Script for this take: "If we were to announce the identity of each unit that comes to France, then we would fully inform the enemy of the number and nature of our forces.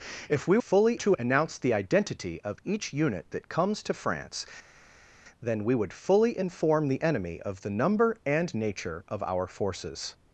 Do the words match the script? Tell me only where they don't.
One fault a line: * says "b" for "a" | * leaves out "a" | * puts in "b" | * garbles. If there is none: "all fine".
* says "fully" for "were"